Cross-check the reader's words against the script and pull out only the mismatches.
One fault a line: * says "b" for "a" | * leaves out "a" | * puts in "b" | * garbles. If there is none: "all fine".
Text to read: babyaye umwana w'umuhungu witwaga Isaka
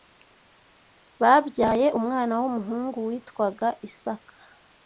all fine